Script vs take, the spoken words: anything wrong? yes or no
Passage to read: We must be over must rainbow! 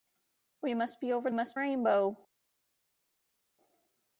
no